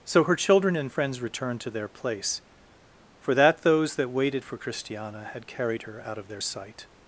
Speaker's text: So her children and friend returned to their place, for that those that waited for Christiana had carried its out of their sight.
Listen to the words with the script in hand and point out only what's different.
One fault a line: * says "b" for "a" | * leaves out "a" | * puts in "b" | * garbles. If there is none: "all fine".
* says "friends" for "friend"
* says "her" for "its"